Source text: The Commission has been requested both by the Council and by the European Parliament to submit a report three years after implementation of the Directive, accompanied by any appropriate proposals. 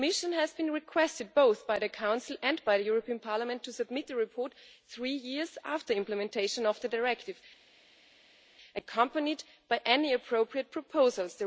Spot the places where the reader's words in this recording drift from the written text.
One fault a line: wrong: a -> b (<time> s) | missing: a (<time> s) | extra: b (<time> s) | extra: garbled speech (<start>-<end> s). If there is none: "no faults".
no faults